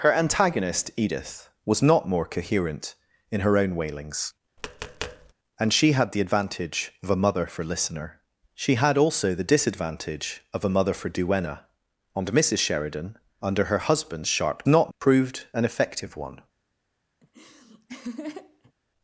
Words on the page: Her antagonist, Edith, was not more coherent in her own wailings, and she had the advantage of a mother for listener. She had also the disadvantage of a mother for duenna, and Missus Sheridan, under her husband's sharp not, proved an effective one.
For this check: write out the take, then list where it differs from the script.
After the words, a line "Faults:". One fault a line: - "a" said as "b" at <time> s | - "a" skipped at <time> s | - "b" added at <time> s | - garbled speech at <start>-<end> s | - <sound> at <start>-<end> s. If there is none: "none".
Her antagonist, Edith, was not more coherent in her own wailings, and she had the advantage of a mother for listener. She had also the disadvantage of a mother for duenna, and Missus Sheridan, under her husband's sharp not, proved an effective one.
Faults:
- tap at 4.6-5.3 s
- laugh at 17.2-18.7 s